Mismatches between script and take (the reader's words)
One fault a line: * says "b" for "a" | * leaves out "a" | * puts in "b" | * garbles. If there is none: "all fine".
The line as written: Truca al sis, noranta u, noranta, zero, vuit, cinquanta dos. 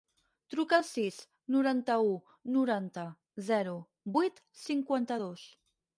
all fine